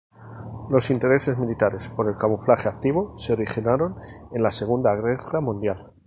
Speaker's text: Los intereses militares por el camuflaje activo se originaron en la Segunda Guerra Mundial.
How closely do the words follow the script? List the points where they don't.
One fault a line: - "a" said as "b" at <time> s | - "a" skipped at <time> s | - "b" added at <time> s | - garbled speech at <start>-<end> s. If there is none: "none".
none